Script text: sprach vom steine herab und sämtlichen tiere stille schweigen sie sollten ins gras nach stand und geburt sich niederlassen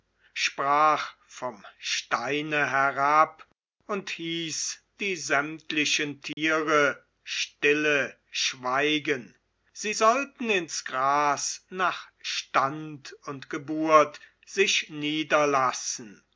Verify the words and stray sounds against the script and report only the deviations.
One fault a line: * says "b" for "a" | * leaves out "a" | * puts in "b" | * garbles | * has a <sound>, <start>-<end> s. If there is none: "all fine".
* puts in "hieß die"
* has a dropout, 6.3-6.4 s